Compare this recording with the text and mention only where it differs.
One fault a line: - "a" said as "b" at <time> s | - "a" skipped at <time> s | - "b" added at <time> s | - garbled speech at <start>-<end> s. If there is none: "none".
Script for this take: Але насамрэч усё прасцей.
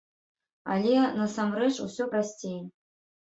none